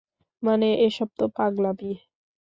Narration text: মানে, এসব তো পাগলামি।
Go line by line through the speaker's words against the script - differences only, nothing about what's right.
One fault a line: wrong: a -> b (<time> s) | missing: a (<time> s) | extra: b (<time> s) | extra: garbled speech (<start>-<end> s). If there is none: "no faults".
no faults